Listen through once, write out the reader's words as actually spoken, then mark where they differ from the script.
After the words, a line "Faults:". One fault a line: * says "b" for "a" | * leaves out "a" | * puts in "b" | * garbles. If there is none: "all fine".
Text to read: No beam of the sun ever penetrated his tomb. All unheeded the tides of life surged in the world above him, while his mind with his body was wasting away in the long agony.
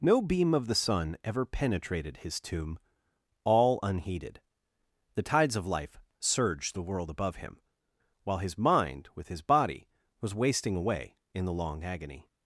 No beam of the sun ever penetrated his tomb. All unheeded the tides of life surged the world above him, while his mind with his body was wasting away in the long agony.
Faults:
* leaves out "in"